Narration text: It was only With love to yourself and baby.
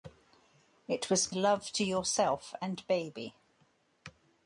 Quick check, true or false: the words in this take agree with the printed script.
false